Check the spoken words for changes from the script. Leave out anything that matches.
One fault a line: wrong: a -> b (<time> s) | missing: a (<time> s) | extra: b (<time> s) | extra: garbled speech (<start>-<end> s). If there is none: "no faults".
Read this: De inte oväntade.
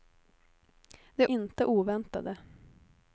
no faults